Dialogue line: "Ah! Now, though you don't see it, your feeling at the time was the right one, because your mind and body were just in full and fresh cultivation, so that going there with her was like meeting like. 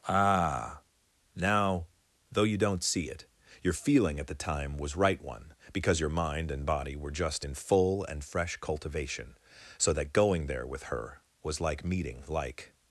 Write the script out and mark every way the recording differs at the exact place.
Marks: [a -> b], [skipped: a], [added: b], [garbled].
"Ah! Now, though you don't see it, your feeling at the time was [skipped: the] right one, because your mind and body were just in full and fresh cultivation, so that going there with her was like meeting like.